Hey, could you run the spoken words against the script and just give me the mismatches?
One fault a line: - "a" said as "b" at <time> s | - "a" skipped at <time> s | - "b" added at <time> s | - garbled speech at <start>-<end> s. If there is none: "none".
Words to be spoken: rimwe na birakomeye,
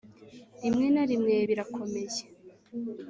- "rimwe" added at 1.1 s